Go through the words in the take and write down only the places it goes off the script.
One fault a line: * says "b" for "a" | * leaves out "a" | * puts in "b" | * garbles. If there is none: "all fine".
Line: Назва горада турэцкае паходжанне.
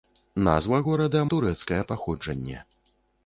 all fine